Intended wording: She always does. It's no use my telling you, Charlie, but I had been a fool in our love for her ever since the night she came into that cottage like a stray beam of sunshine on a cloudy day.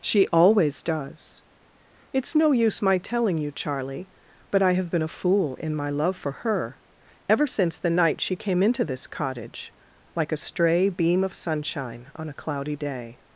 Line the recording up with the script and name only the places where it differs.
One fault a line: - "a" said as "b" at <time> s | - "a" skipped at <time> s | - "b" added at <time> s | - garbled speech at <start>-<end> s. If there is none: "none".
- "had" said as "have" at 4.7 s
- "our" said as "my" at 5.7 s
- "that" said as "this" at 8.8 s